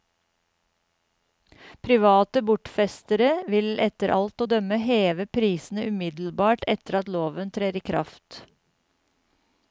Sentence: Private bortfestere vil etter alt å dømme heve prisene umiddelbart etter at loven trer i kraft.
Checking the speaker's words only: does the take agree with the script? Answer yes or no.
yes